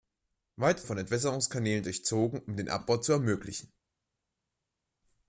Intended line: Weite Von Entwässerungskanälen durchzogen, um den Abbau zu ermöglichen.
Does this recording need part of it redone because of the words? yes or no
no